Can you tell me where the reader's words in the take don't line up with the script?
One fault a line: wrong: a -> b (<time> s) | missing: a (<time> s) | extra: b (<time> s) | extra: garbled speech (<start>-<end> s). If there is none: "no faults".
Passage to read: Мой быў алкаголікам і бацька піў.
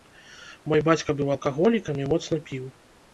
extra: бацька (0.9 s)
wrong: бацька -> моцна (2.1 s)